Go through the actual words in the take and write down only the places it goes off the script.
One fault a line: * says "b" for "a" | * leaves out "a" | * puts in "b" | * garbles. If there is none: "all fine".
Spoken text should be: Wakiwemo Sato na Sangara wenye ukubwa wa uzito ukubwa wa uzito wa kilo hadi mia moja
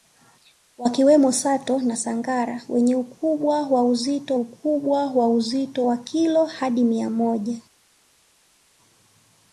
all fine